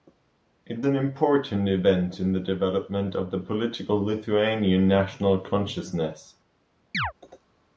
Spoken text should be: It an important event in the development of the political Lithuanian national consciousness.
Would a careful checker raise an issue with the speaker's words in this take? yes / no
no